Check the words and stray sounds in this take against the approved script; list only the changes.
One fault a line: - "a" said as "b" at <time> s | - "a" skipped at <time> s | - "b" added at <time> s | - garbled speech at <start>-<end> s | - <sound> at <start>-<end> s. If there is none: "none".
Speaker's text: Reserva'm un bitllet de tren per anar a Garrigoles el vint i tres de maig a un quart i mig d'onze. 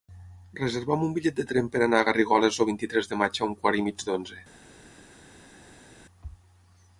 none